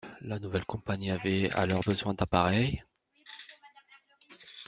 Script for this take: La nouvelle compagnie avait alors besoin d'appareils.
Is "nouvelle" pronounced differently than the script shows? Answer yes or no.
no